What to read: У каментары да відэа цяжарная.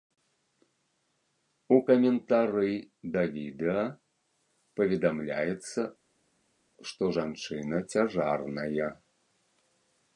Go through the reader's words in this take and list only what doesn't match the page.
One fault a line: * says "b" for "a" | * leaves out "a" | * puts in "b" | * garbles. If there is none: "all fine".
* puts in "паведамляецца што жанчына"